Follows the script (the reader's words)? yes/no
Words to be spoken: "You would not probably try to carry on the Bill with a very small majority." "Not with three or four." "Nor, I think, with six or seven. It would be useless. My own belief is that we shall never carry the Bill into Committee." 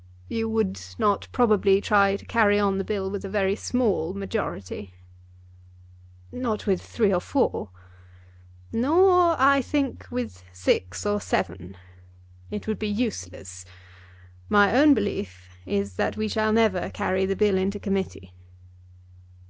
yes